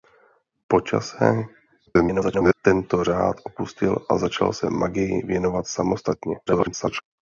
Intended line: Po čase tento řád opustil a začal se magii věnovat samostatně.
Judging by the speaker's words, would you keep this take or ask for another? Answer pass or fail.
fail